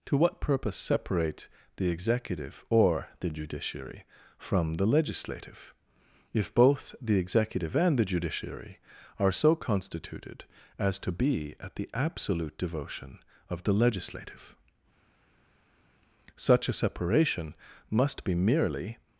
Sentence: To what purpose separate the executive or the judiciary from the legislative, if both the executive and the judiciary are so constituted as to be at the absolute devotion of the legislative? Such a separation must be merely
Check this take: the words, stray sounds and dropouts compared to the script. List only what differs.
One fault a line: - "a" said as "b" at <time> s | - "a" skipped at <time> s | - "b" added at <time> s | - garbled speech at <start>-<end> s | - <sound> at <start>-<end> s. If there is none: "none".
none